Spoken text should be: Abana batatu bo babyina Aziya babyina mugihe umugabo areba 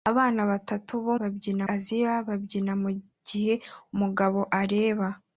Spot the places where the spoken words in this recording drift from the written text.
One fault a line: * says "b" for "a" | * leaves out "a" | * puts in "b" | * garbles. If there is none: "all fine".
all fine